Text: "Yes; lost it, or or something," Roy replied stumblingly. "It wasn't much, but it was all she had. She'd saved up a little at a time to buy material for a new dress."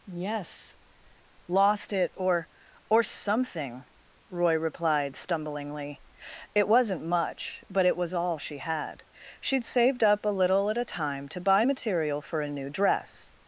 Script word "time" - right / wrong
right